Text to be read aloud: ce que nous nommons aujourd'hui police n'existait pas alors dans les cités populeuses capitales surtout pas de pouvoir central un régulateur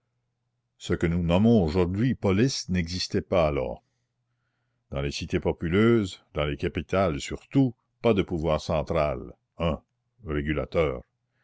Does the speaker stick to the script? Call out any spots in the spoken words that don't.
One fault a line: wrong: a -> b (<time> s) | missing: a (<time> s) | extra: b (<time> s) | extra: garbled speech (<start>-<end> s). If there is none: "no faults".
extra: dans les (6.3 s)